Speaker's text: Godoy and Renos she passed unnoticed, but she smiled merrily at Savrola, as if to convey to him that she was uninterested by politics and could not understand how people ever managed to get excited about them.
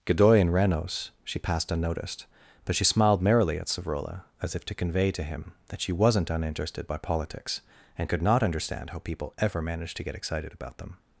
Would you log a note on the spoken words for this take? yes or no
yes